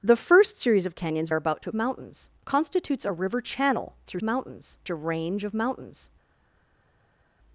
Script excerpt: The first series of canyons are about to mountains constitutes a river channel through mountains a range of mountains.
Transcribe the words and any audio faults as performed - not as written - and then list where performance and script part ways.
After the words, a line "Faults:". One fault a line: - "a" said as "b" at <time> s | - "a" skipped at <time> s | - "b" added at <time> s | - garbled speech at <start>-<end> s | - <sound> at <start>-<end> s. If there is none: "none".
The first series of canyons are about to mountains constitutes a river channel through mountains a range of mountains.
Faults:
none